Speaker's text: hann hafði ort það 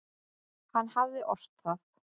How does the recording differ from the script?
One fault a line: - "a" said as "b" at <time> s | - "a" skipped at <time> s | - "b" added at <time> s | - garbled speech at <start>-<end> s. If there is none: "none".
none